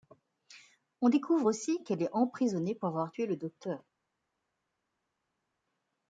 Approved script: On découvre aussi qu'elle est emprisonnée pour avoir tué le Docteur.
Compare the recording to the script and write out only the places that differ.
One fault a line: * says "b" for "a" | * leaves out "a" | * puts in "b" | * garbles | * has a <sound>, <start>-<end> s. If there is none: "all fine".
all fine